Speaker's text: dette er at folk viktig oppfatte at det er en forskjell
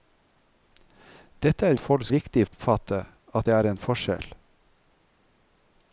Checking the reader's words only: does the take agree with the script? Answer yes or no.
yes